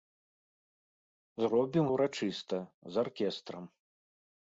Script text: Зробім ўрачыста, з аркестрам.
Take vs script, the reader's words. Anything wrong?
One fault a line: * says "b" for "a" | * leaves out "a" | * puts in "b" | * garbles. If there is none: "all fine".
all fine